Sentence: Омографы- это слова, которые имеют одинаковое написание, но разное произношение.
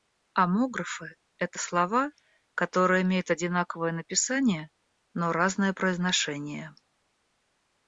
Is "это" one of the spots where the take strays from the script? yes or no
no